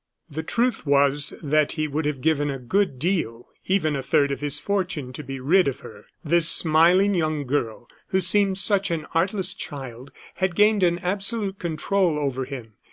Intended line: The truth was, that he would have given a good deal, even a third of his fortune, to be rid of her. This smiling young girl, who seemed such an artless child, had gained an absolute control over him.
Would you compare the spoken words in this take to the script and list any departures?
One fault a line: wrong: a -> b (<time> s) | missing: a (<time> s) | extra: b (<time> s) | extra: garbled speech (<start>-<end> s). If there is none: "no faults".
no faults